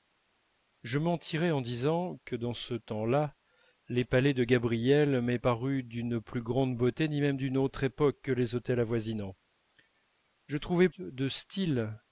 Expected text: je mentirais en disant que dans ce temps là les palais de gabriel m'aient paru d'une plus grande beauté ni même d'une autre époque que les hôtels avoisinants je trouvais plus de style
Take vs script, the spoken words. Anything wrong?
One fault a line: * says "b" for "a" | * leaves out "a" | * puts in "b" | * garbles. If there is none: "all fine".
* leaves out "plus"